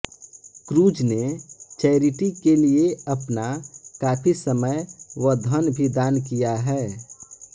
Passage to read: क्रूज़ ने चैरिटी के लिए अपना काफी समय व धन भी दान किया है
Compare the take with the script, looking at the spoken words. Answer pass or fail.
pass